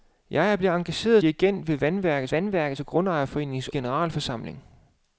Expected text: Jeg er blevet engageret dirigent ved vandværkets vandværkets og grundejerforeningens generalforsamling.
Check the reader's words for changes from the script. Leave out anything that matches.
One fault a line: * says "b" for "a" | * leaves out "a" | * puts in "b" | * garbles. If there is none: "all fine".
all fine